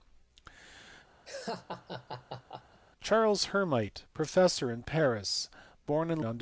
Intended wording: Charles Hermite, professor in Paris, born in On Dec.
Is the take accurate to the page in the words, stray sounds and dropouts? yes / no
no